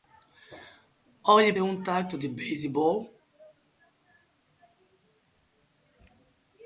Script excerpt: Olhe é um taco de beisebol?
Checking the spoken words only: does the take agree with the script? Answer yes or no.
yes